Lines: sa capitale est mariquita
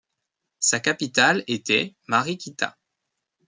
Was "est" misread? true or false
true